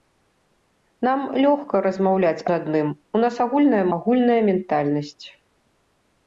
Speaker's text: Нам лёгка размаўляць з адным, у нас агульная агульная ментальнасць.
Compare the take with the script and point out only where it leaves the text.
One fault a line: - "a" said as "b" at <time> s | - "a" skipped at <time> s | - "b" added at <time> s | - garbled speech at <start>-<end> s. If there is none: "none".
none